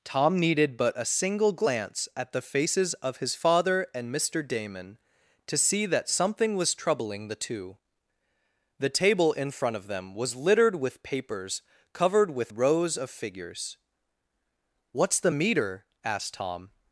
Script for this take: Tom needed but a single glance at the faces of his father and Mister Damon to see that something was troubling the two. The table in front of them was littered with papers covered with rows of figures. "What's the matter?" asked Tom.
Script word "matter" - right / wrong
wrong